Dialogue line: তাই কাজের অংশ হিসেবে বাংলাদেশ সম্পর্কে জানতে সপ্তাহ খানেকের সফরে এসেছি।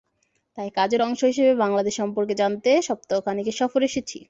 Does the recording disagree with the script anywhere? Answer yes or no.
no